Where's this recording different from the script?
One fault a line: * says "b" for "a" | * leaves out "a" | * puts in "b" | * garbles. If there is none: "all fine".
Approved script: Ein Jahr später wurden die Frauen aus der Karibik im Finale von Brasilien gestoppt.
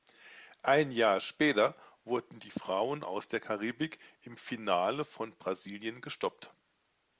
all fine